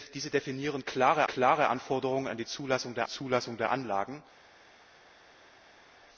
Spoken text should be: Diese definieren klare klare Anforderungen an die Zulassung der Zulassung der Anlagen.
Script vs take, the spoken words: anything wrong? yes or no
no